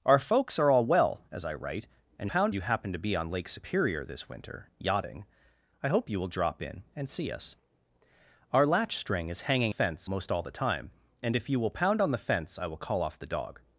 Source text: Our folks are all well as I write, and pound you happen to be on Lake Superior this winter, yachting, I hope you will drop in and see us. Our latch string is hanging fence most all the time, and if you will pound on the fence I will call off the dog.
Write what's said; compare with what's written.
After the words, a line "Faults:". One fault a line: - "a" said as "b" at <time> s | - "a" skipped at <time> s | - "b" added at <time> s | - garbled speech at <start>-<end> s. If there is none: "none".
Our folks are all well as I write, and pound you happen to be on Lake Superior this winter, yachting, I hope you will drop in and see us. Our latch string is hanging fence most all the time, and if you will pound on the fence I will call off the dog.
Faults:
none